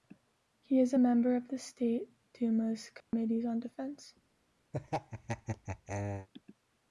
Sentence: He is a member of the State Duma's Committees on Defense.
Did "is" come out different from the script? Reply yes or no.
no